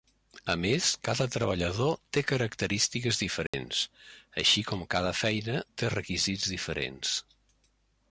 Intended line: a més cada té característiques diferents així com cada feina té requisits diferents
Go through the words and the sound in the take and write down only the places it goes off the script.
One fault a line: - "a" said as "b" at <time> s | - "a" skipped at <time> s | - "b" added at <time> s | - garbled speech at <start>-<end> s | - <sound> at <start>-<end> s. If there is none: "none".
- "treballador" added at 1.3 s
- dropout at 3.5-3.5 s